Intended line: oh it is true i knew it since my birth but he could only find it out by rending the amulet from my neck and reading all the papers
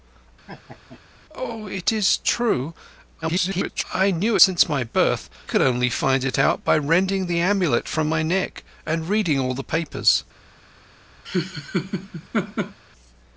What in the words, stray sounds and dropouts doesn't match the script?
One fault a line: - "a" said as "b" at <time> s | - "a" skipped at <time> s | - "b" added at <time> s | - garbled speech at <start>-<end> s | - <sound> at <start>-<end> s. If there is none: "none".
- laugh at 0.5-1.0 s
- garbled speech at 3.2-3.8 s
- "it" skipped at 4.4 s
- "but he" skipped at 5.3 s
- laugh at 11.2-12.8 s